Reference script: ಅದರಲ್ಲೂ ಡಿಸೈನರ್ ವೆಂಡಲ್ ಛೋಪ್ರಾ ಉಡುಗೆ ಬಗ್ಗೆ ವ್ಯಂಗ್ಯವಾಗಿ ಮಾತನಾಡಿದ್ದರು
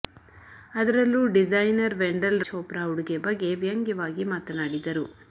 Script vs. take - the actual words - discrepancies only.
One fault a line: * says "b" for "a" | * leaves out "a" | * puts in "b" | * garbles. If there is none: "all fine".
all fine